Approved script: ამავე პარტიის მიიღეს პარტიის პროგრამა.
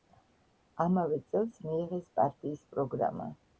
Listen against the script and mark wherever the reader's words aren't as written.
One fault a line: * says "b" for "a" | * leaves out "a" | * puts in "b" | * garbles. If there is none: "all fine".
* says "წელს" for "პარტიის"